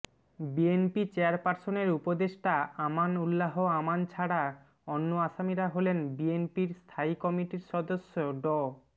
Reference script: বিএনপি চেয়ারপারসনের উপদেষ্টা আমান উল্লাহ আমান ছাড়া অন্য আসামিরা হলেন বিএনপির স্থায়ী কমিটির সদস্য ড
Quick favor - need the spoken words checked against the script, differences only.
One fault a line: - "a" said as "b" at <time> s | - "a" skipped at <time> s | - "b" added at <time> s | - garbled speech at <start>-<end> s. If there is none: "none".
none